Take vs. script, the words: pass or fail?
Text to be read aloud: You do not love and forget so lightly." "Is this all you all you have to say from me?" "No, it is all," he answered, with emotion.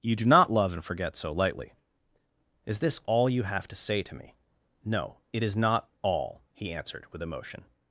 fail